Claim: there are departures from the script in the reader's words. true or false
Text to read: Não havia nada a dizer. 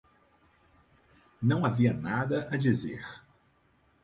false